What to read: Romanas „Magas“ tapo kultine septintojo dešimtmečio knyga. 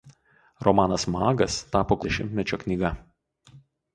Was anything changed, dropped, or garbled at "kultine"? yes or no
yes